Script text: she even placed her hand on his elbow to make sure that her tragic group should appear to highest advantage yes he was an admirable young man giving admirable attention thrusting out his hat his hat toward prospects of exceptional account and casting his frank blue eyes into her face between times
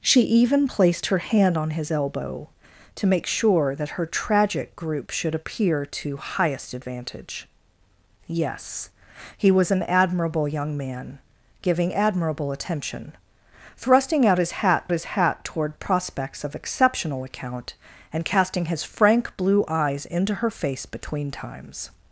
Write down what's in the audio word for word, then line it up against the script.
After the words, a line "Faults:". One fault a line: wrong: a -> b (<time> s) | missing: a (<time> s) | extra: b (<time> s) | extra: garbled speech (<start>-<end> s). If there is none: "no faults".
she even placed her hand on his elbow to make sure that her tragic group should appear to highest advantage yes he was an admirable young man giving admirable attention thrusting out his hat his hat toward prospects of exceptional account and casting his frank blue eyes into her face between times
Faults:
no faults